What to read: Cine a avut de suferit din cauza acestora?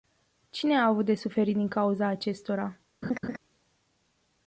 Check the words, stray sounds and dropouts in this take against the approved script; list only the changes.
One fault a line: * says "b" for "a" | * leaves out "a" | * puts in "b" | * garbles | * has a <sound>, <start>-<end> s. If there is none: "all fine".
* has a laugh, 3.0-3.4 s